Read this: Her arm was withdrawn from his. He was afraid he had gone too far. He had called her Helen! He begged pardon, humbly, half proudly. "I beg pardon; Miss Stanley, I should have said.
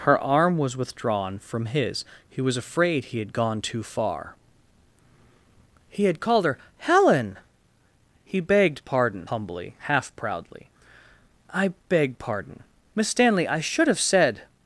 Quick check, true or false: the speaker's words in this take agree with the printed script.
true